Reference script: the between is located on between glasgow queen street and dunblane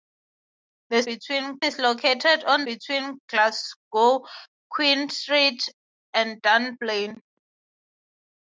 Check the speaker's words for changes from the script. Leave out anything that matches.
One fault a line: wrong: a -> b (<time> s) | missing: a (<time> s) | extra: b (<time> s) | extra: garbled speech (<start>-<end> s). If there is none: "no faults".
no faults